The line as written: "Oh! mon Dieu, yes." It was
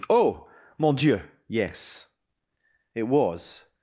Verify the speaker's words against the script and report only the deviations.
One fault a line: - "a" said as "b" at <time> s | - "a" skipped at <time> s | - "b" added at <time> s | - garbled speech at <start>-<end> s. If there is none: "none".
none